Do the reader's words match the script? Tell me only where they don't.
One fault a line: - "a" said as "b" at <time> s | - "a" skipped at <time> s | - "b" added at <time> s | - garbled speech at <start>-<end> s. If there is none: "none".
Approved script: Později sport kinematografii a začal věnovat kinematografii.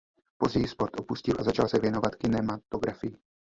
- "kinematografii" said as "opustil" at 1.0 s
- "se" added at 1.7 s